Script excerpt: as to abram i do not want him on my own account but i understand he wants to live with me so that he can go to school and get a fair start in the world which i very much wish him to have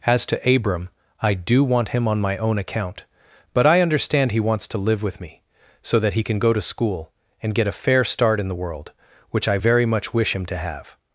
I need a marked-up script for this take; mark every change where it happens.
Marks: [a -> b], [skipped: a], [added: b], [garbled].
as to abram i do [skipped: not] want him on my own account but i understand he wants to live with me so that he can go to school and get a fair start in the world which i very much wish him to have